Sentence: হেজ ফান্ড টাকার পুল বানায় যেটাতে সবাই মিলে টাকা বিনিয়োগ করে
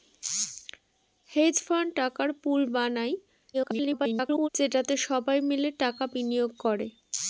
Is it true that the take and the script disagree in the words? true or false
true